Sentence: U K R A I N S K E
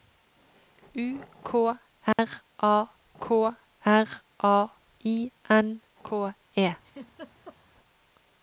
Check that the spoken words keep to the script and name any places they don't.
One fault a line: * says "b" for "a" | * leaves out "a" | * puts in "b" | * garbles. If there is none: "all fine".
* puts in "K R A"
* leaves out "S"